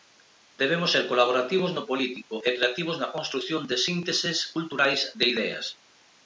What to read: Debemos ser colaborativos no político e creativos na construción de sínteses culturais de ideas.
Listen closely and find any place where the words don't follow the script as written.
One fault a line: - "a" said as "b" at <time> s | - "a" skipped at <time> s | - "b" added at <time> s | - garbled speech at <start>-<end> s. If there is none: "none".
none